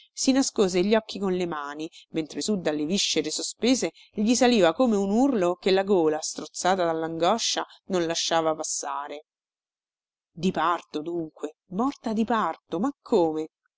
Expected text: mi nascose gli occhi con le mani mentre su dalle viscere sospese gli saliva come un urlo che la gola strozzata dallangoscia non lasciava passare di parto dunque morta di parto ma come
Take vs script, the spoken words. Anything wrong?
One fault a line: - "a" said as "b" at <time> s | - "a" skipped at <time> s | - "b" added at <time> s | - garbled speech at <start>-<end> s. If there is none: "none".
- "mi" said as "si" at 0.1 s